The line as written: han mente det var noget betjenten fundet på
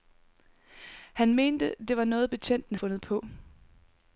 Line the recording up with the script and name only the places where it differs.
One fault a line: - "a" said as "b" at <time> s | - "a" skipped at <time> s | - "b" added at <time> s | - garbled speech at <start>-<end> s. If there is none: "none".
none